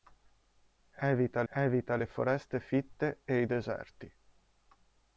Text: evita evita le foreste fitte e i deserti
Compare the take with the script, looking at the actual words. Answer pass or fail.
pass